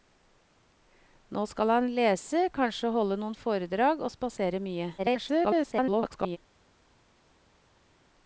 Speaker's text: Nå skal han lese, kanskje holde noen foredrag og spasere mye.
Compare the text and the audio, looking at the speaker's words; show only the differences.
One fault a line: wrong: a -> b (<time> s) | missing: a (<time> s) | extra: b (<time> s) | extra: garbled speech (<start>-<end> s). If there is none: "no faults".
extra: garbled speech (5.0-6.4 s)